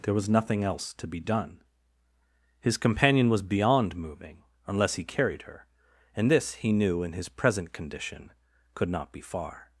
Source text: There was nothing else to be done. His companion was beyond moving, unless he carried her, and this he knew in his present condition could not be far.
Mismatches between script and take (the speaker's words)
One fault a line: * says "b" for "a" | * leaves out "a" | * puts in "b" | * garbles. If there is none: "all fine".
all fine